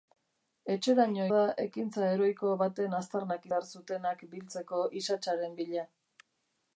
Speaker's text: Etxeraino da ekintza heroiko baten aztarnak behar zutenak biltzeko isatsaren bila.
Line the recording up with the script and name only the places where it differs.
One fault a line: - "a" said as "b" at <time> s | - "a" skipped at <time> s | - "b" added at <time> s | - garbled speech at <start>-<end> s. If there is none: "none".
none